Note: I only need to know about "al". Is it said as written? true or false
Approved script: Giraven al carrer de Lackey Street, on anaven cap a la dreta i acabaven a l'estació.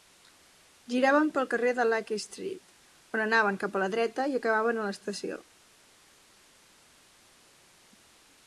false